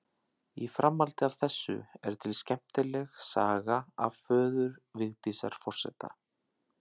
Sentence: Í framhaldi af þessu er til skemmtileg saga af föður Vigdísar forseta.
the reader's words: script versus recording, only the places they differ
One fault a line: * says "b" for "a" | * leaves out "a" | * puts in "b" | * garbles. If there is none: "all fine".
all fine